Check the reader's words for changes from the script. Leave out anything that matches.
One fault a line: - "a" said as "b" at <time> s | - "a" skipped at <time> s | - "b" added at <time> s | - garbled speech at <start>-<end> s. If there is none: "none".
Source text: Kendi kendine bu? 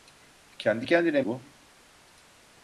none